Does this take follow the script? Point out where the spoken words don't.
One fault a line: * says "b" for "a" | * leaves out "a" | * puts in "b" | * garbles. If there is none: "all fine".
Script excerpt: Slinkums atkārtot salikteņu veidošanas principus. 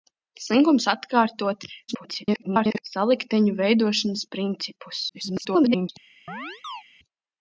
* garbles
* garbles